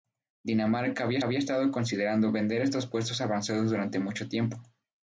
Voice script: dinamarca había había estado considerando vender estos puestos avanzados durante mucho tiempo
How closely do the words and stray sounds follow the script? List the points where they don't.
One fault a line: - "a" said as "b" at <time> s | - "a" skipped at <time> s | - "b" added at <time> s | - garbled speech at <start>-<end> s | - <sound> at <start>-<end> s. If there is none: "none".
none